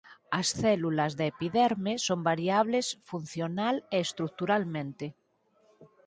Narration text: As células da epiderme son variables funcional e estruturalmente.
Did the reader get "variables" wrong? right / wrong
right